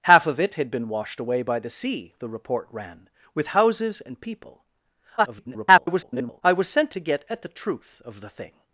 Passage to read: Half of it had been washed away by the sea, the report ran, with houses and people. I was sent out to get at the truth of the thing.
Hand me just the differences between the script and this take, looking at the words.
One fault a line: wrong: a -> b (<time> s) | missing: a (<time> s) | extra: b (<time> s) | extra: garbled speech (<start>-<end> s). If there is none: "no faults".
extra: garbled speech (5.2-6.4 s)
missing: out (6.9 s)